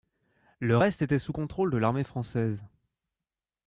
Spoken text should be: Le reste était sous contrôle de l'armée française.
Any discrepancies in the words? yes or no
no